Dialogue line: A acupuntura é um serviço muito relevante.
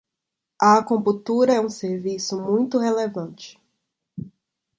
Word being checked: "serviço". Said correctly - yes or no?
yes